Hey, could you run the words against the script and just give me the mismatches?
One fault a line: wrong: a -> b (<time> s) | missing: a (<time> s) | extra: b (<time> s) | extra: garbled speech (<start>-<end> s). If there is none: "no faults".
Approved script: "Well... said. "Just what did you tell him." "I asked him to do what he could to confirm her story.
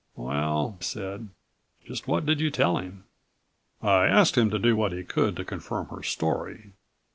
no faults